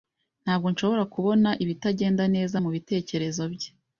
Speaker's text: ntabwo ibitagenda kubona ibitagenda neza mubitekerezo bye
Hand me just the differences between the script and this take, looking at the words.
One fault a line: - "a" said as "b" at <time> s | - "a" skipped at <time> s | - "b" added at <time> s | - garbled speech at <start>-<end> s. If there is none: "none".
- "ibitagenda" said as "nshobora" at 0.7 s